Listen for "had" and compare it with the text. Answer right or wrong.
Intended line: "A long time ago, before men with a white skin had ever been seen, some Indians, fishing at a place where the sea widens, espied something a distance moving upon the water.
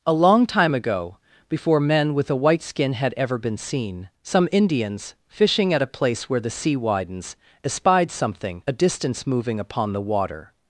right